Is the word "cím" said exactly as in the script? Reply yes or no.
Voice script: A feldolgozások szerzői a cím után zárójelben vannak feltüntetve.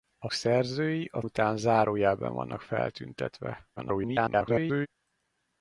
no